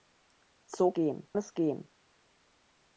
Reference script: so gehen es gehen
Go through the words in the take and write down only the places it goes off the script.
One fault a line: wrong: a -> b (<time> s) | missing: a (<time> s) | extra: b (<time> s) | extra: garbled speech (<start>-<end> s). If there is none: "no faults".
no faults